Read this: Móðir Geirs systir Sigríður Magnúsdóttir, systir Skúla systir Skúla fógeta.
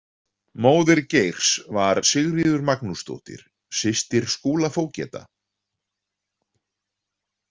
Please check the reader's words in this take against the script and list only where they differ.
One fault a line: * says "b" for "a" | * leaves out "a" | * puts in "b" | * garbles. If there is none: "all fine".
* says "var" for "systir"
* leaves out "systir Skúla"